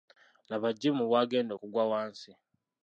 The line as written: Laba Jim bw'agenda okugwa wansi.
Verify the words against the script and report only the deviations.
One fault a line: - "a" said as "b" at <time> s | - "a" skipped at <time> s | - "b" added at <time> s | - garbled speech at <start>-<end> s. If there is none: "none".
none